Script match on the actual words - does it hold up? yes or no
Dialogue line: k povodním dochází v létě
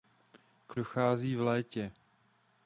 no